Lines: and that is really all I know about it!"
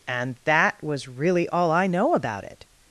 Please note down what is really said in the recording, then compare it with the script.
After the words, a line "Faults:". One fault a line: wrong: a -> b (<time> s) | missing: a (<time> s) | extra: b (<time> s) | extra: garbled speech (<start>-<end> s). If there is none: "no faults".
and that was really all I know about it!"
Faults:
wrong: is -> was (0.8 s)